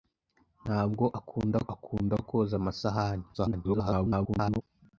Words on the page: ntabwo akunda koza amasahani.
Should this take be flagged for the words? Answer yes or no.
yes